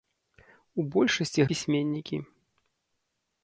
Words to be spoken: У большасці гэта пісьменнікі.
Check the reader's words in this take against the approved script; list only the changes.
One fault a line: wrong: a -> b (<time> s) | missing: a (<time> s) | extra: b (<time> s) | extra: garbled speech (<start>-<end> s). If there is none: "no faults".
missing: гэта (1.5 s)